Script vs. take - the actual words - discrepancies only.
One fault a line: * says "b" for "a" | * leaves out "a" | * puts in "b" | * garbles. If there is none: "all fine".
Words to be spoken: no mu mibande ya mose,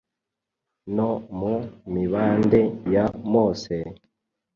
all fine